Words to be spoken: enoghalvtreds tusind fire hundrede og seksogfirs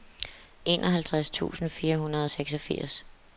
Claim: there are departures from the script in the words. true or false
false